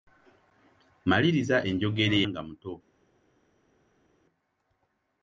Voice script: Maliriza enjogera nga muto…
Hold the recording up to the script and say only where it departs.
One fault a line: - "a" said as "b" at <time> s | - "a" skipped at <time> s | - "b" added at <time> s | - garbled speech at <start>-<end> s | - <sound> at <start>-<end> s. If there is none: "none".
none